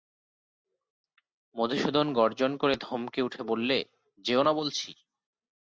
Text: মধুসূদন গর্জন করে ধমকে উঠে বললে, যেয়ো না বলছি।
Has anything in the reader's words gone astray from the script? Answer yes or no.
no